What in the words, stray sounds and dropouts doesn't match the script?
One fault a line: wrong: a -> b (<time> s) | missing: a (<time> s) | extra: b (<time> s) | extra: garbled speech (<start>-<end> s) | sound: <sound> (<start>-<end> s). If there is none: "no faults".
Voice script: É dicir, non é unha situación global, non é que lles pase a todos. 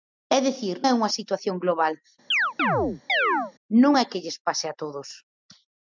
missing: non (0.8 s)
sound: chirp (2.3-3.5 s)